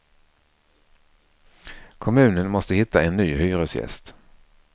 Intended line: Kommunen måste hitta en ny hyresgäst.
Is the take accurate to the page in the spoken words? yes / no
yes